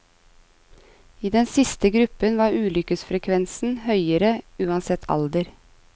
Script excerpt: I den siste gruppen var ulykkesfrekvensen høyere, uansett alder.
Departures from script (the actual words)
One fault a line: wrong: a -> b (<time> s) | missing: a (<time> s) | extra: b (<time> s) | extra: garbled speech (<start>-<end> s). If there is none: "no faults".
no faults